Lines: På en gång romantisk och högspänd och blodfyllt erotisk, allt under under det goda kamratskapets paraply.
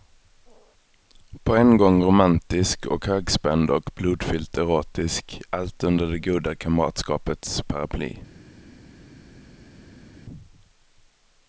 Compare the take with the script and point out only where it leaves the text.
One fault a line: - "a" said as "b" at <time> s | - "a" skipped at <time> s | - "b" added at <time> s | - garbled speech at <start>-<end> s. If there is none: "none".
- "under" skipped at 6.1 s